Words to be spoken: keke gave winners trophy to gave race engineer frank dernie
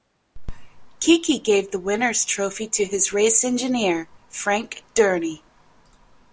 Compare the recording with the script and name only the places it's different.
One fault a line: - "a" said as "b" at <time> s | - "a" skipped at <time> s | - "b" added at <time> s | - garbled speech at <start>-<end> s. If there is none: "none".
- "the" added at 1.7 s
- "gave" said as "his" at 2.9 s